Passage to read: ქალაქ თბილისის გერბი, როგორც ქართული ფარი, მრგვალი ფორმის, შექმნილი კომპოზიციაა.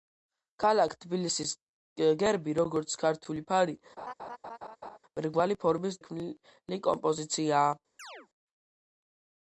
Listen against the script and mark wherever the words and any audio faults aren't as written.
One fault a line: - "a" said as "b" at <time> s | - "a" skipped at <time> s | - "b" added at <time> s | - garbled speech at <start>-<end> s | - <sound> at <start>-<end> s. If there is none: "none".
- laugh at 4.0-5.0 s
- chirp at 8.0-8.3 s